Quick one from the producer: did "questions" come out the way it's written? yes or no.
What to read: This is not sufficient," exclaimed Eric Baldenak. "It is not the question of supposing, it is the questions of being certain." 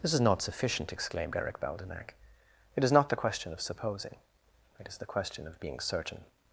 no